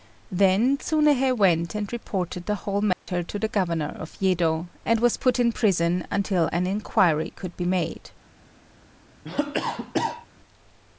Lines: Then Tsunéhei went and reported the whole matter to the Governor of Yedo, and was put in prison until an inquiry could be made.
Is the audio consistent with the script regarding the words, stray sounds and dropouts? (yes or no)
no